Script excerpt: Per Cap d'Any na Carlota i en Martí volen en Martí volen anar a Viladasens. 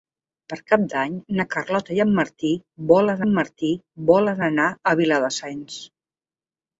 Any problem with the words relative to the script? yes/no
no